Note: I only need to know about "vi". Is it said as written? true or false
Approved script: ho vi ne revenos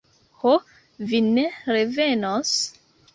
true